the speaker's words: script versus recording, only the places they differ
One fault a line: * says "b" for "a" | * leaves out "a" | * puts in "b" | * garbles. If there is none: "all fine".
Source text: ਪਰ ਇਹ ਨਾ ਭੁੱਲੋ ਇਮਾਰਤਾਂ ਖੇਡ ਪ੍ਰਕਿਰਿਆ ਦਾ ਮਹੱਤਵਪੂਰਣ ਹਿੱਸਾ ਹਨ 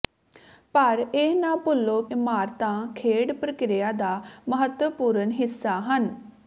all fine